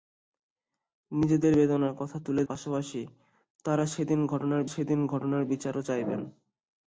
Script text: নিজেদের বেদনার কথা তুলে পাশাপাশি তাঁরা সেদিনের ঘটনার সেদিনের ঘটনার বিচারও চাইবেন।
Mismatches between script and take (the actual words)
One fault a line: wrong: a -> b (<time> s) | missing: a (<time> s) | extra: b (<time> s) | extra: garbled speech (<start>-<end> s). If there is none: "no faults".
no faults